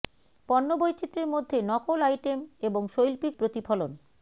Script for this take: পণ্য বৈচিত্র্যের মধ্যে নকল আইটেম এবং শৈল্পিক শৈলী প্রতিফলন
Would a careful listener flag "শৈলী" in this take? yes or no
yes